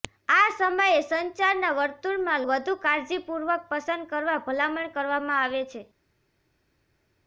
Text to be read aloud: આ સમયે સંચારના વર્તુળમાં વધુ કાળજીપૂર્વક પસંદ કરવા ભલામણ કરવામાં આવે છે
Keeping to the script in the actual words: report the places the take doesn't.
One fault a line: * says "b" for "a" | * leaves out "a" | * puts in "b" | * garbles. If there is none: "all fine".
all fine